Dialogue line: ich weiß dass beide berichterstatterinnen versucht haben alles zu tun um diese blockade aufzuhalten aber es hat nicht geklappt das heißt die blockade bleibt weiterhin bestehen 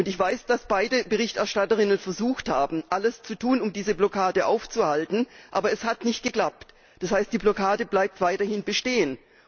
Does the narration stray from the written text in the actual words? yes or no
no